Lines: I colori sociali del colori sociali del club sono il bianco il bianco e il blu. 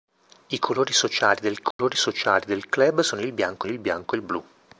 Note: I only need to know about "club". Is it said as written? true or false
true